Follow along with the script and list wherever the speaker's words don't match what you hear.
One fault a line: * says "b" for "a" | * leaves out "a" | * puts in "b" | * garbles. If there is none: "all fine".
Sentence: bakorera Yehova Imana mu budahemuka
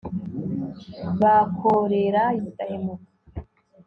* leaves out "Yehova Imana mu"